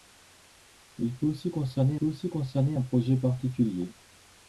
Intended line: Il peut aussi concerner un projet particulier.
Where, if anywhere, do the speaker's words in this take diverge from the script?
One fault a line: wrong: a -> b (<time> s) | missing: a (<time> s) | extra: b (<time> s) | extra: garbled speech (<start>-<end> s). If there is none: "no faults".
extra: peut aussi concerner (1.9 s)